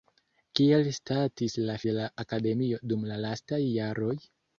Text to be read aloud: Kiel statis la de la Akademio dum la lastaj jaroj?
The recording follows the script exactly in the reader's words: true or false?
true